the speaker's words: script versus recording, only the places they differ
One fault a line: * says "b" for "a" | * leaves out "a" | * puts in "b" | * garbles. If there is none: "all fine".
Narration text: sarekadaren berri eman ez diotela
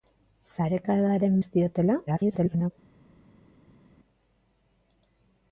* leaves out "berri eman"
* garbles